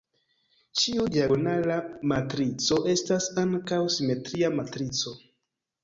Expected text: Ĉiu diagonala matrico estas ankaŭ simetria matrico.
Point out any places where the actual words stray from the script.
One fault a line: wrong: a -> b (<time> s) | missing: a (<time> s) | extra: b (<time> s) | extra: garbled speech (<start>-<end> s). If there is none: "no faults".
no faults